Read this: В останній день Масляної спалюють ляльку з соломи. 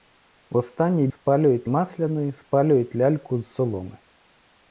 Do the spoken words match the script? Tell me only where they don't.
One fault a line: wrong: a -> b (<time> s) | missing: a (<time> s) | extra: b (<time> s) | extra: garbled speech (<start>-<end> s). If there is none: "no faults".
wrong: день -> спалюють (1.1 s)